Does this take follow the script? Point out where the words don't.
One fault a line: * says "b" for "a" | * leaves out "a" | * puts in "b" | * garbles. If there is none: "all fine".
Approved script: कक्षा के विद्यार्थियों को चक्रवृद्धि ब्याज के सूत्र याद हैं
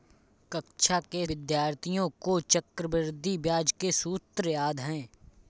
all fine